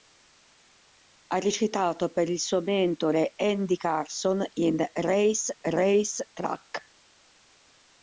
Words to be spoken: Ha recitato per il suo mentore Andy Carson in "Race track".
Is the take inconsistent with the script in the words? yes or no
yes